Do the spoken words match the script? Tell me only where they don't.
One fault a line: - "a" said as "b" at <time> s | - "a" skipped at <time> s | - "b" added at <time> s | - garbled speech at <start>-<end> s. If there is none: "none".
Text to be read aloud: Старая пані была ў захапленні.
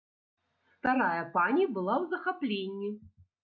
none